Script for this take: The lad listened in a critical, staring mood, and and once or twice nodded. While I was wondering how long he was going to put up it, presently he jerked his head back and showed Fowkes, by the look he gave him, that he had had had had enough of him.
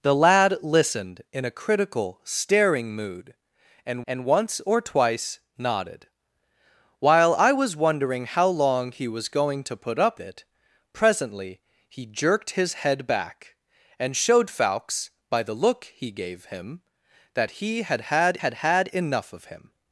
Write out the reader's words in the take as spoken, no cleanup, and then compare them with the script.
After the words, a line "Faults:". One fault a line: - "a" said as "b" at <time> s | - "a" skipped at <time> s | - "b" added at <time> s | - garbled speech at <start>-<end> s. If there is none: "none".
The lad listened in a critical, staring mood, and and once or twice nodded. While I was wondering how long he was going to put up it, presently he jerked his head back and showed Fowkes, by the look he gave him, that he had had had had enough of him.
Faults:
none